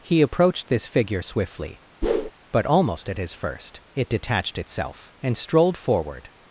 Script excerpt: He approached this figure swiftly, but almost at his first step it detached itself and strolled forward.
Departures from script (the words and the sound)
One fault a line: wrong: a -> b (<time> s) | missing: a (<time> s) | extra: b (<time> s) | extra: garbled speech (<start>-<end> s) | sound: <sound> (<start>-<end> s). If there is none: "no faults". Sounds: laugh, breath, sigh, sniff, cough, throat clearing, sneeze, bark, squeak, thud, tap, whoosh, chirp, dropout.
sound: whoosh (2.0-2.3 s)
missing: step (3.8 s)